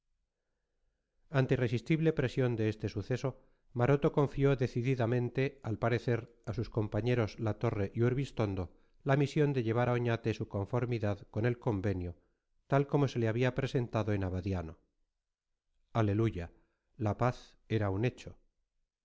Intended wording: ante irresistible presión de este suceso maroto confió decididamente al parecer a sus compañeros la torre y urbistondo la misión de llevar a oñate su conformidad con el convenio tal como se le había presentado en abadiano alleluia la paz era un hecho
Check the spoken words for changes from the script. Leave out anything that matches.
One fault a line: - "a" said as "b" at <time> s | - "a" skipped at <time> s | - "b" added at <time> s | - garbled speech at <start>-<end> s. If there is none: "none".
none